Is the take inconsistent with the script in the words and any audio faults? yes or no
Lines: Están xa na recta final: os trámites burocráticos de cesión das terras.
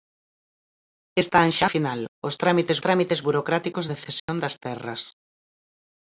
yes